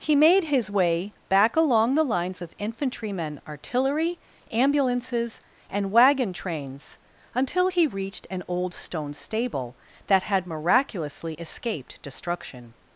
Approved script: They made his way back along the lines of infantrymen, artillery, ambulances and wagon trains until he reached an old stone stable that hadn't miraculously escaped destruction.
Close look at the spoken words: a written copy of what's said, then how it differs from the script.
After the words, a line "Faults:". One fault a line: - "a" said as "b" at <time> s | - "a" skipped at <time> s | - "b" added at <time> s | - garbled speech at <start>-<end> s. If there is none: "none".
He made his way back along the lines of infantrymen, artillery, ambulances and wagon trains until he reached an old stone stable that had miraculously escaped destruction.
Faults:
- "They" said as "He" at 0.0 s
- "hadn't" said as "had" at 10.2 s